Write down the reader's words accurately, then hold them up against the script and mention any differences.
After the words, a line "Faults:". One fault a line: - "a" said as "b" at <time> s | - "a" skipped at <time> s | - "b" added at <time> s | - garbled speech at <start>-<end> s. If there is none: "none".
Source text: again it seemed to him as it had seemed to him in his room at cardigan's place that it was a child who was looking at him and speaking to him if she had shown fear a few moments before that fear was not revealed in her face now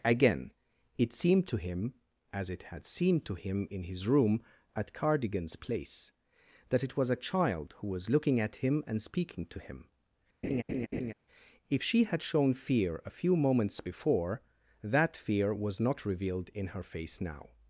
again it seemed to him as it had seemed to him in his room at cardigan's place that it was a child who was looking at him and speaking to him if she had shown fear a few moments before that fear was not revealed in her face now
Faults:
none